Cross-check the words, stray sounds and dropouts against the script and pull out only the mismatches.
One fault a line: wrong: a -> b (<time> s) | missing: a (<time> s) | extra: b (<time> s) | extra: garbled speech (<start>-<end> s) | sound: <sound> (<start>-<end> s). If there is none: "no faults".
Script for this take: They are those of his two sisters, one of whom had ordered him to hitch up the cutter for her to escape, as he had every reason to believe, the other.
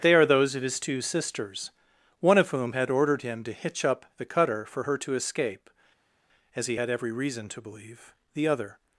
no faults